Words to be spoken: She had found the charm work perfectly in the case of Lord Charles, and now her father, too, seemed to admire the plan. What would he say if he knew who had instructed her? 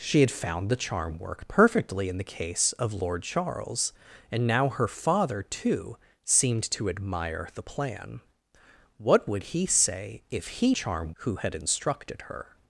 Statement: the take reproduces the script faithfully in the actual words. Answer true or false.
false